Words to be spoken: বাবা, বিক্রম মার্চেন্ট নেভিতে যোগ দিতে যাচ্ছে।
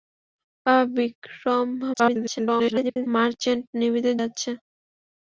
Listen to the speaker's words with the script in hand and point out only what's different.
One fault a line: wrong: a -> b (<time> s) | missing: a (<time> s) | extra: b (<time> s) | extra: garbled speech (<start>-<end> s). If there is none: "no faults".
extra: garbled speech (1.9-3.1 s)
missing: যোগ দিতে (4.1 s)